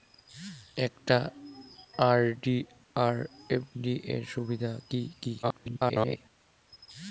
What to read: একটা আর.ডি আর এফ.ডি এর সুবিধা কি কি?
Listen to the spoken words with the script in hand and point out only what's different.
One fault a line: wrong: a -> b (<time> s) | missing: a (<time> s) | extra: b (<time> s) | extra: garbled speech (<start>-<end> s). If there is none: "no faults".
extra: garbled speech (5.4-6.2 s)